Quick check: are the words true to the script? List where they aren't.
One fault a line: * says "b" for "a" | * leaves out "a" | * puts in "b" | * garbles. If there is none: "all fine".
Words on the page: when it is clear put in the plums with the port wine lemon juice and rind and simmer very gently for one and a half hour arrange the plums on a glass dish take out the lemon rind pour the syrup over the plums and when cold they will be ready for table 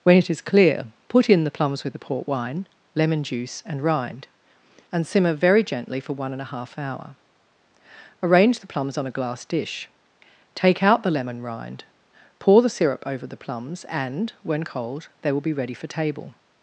all fine